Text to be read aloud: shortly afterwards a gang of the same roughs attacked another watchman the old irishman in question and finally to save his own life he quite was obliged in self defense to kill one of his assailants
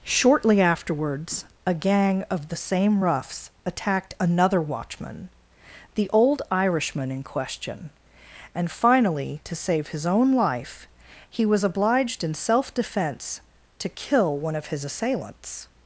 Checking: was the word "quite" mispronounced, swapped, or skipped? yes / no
yes